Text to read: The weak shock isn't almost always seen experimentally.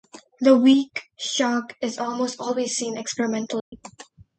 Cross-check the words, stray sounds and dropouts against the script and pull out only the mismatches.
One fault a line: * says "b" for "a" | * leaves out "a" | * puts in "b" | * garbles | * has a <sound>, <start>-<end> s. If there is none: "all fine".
* says "is" for "isn't"
* has a dropout, 3.6-3.7 s